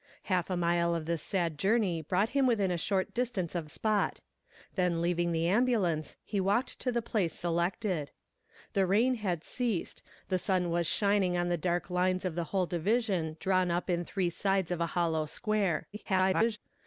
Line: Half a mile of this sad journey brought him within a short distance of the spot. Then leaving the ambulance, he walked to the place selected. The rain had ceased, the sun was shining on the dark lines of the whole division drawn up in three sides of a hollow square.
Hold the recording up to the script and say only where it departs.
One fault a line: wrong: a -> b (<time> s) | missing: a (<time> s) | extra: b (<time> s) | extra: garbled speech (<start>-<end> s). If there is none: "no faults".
missing: the (3.7 s)
extra: garbled speech (15.9-16.6 s)